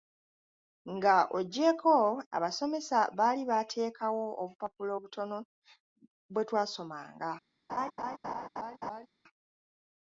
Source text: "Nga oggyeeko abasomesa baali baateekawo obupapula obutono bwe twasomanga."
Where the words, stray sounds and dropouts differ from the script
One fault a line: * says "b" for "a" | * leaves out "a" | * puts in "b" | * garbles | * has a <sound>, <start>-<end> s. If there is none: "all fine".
* has a laugh, 7.7-9.1 s